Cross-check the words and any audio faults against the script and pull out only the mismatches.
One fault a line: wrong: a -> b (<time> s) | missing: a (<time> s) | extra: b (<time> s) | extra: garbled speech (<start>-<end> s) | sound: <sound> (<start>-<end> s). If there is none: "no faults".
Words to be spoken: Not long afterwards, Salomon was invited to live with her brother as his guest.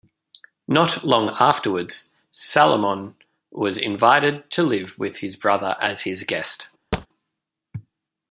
wrong: her -> his (5.2 s)
sound: thud (6.9-7.1 s)